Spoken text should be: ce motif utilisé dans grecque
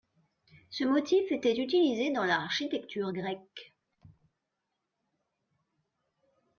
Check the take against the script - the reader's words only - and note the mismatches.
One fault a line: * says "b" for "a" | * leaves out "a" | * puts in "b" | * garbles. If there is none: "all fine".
* puts in "était"
* puts in "l'architecture"